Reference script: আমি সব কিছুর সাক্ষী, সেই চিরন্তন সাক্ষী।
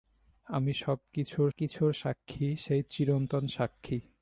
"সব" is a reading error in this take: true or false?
false